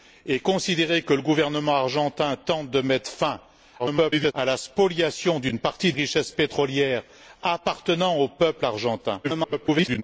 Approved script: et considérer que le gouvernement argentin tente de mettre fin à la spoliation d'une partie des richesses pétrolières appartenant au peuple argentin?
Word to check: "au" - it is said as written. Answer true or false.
true